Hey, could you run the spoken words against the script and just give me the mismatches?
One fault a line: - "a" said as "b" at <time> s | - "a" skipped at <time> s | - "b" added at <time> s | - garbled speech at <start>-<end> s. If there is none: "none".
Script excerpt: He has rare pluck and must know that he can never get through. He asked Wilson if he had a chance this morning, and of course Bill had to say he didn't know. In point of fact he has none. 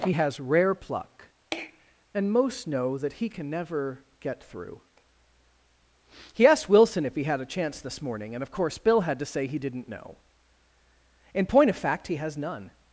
- "must" said as "most" at 2.3 s